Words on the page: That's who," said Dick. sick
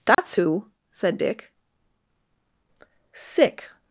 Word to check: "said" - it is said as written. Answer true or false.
true